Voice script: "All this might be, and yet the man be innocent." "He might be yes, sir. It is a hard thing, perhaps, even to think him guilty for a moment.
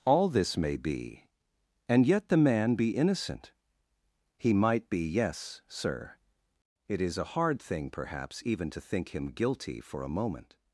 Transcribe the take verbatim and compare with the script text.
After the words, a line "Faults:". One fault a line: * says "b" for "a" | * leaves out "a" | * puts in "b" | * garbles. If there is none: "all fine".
"All this may be, and yet the man be innocent." "He might be yes, sir. It is a hard thing, perhaps, even to think him guilty for a moment.
Faults:
* says "may" for "might"